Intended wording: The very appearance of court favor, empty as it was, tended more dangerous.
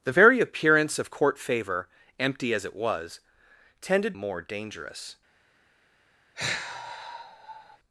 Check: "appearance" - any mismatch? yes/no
no